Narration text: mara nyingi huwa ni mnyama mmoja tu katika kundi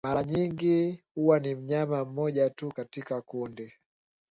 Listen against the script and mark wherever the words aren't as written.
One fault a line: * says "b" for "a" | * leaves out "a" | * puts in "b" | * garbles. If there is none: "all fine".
all fine